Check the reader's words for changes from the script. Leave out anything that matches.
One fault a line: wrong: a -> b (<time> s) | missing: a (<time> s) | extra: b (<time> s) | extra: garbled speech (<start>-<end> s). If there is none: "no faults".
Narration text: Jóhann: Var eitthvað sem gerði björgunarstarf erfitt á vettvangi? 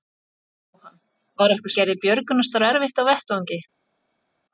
missing: sem (1.8 s)